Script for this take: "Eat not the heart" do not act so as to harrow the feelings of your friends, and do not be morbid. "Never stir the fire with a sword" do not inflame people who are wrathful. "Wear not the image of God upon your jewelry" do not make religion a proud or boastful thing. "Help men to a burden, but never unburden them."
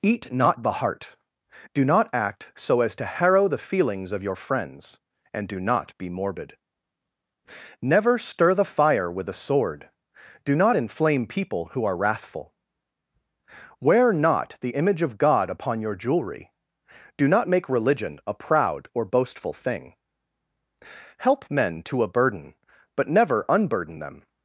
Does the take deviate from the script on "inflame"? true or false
false